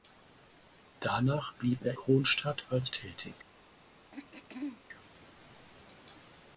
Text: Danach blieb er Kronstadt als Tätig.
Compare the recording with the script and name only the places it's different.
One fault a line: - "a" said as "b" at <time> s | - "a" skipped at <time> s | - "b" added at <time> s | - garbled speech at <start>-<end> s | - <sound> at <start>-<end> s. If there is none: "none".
- throat clearing at 4.1-4.8 s